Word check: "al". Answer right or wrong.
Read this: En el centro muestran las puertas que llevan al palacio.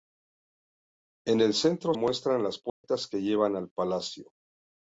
right